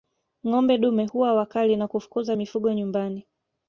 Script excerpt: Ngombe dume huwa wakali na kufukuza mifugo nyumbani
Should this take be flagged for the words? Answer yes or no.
no